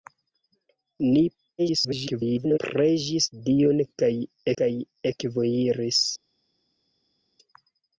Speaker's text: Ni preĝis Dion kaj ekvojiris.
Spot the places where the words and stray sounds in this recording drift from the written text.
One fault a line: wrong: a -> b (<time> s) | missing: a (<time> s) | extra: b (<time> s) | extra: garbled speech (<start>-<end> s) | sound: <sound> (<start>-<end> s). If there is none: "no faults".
extra: garbled speech (1.6-2.6 s)
extra: kaj (4.6 s)